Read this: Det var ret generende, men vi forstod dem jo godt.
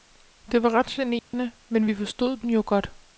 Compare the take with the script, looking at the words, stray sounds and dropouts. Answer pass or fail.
fail